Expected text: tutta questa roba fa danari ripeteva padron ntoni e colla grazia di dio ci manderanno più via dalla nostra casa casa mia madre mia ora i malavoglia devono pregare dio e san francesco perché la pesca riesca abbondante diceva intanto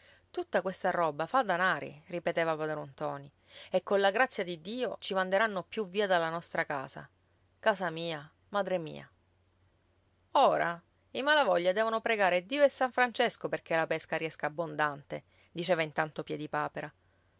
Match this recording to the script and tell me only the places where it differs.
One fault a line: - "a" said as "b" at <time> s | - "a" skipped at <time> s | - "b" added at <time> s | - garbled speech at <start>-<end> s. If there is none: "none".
none